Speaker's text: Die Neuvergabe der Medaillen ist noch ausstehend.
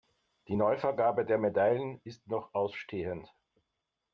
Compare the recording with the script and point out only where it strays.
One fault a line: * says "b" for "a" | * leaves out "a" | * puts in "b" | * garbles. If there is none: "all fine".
all fine